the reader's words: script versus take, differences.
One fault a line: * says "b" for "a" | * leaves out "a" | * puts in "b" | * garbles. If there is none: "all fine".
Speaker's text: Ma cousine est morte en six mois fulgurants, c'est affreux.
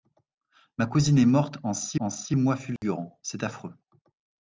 * puts in "en six"